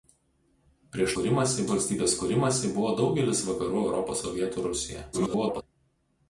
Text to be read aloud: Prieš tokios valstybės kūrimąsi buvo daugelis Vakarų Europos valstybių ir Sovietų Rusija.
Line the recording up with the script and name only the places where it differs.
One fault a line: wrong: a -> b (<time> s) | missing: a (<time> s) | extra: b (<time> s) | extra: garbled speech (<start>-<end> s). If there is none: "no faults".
wrong: tokios -> kūrimąsi (1.1 s)
missing: valstybių ir (4.2 s)
extra: garbled speech (5.1-5.6 s)